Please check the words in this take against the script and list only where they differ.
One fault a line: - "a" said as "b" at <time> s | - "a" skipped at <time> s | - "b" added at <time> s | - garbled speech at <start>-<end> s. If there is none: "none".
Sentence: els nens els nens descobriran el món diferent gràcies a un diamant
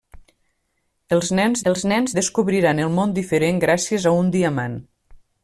none